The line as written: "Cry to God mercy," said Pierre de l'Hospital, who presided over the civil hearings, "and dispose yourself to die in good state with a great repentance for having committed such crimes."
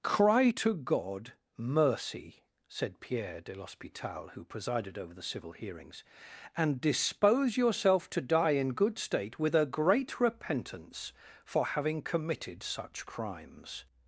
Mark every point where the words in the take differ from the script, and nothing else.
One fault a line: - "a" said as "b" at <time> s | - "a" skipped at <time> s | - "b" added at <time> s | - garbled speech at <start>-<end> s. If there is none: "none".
none